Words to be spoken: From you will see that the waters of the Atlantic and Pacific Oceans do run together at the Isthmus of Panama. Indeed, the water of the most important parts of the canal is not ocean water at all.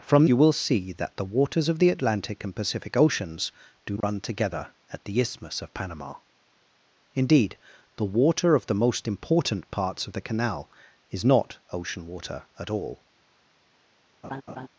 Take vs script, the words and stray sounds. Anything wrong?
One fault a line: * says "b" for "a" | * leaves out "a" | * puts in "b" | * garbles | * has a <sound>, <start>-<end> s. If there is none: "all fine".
* has a dropout, 4.0-4.0 s
* has a laugh, 14.2-14.7 s